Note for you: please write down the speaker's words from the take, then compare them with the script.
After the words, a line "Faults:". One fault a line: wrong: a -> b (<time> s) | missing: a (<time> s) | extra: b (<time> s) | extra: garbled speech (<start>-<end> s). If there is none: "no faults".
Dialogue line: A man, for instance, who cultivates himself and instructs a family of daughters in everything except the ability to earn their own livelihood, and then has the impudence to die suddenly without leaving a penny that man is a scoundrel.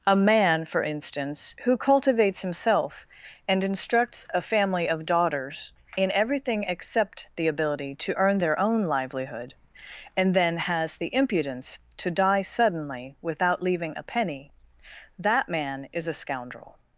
A man, for instance, who cultivates himself and instructs a family of daughters in everything except the ability to earn their own livelihood, and then has the impudence to die suddenly without leaving a penny that man is a scoundrel.
Faults:
no faults